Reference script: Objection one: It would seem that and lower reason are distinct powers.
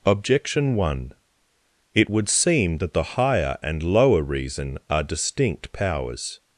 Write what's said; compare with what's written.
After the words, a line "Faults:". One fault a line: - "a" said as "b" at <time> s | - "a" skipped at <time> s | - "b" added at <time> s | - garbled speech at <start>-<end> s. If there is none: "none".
Objection one: It would seem that the higher and lower reason are distinct powers.
Faults:
- "the higher" added at 2.9 s